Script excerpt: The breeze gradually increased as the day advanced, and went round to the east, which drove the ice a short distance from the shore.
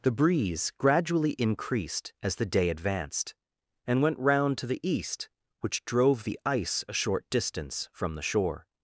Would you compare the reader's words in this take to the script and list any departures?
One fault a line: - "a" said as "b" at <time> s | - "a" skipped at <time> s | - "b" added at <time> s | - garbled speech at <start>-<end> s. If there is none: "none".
none